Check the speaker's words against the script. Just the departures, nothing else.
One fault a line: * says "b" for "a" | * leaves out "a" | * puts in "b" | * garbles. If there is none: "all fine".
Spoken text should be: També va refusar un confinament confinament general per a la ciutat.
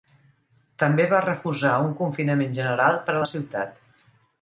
* leaves out "confinament"